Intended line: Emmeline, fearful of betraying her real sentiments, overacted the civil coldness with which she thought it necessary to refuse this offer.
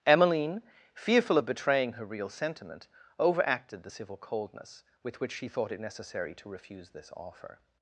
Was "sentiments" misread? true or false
true